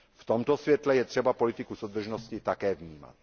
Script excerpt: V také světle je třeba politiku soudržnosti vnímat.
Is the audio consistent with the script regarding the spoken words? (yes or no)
no